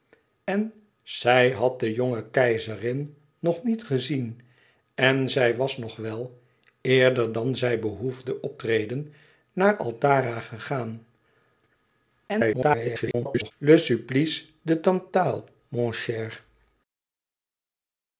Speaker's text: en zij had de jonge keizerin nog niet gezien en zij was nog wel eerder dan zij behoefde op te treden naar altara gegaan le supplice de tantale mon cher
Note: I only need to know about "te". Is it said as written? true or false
false